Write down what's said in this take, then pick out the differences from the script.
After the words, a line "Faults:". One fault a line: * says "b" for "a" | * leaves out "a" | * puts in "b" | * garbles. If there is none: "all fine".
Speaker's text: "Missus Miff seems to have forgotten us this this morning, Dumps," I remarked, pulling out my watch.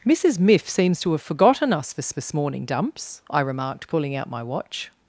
"Missus Miff seems to have forgotten us this this morning, Dumps," I remarked, pulling out my watch.
Faults:
all fine